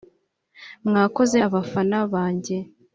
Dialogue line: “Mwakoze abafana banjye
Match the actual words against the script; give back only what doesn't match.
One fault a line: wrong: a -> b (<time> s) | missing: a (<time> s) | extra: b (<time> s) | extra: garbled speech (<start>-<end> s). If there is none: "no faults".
no faults